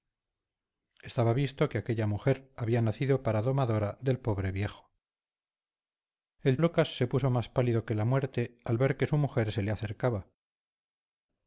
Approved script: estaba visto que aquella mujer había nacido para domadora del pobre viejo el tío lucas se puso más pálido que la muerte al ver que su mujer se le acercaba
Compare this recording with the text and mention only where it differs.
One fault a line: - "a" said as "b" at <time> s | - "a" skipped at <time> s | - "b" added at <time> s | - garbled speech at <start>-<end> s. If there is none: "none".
- "tío" skipped at 6.6 s